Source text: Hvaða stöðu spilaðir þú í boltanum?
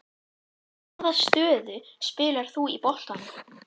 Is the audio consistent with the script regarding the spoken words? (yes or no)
yes